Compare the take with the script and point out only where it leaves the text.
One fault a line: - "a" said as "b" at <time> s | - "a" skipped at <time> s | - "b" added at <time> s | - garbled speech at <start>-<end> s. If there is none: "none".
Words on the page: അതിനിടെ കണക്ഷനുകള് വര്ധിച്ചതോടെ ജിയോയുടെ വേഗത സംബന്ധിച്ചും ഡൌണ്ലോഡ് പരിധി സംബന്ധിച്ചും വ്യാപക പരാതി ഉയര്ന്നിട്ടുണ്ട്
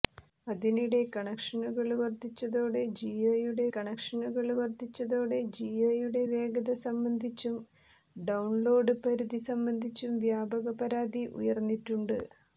- "കണക്ഷനുകള് വര്ധിച്ചതോടെ ജിയോയുടെ" added at 3.7 s